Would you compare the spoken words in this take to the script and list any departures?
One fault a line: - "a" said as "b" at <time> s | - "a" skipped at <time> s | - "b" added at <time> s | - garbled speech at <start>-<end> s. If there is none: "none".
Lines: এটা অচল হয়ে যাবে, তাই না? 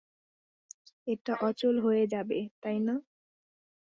none